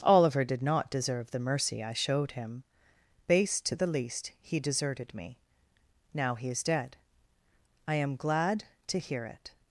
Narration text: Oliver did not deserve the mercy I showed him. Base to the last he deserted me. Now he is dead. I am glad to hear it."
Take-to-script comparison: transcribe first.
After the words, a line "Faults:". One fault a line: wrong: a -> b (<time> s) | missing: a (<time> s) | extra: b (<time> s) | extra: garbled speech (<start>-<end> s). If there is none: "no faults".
Oliver did not deserve the mercy I showed him. Base to the least he deserted me. Now he is dead. I am glad to hear it."
Faults:
wrong: last -> least (3.9 s)